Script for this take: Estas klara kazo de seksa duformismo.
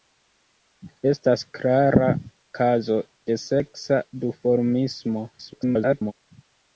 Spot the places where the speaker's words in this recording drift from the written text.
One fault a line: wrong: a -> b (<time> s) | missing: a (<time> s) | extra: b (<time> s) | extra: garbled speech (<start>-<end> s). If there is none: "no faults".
extra: garbled speech (5.3-6.1 s)